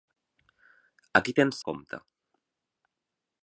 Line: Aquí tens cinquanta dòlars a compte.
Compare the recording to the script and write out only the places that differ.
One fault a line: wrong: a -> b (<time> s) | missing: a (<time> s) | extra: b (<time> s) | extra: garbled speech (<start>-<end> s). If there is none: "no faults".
missing: cinquanta dòlars (1.6 s)